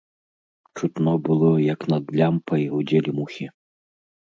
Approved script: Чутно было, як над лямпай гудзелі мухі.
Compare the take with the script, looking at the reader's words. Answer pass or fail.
pass